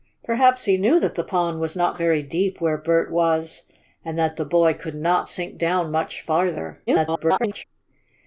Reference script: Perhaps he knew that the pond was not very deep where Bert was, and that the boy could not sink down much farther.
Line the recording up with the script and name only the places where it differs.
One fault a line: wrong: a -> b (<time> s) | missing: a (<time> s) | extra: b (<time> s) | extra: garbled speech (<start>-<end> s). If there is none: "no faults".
extra: garbled speech (6.9-7.6 s)